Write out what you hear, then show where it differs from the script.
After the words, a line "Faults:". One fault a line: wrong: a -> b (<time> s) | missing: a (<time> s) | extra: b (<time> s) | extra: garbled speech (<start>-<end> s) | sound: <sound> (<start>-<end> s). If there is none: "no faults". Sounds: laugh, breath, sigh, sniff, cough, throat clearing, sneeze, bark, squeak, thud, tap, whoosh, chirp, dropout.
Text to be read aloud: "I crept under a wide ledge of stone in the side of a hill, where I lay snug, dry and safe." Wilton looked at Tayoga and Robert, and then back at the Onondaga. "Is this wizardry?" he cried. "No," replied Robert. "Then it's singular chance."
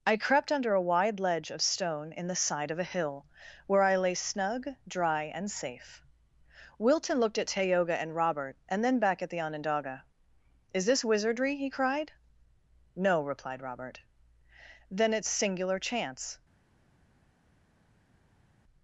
"I crept under a wide ledge of stone in the side of a hill, where I lay snug, dry and safe." Wilton looked at Tayoga and Robert, and then back at the Onondaga. "Is this wizardry?" he cried. "No," replied Robert. "Then it's singular chance."
Faults:
no faults